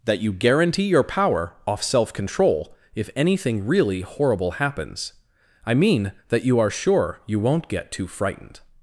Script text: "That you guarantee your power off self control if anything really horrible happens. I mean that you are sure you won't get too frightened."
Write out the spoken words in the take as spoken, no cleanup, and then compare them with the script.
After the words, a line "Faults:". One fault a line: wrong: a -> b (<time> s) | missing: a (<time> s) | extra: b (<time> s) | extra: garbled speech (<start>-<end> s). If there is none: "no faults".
"That you guarantee your power off self control if anything really horrible happens. I mean that you are sure you won't get too frightened."
Faults:
no faults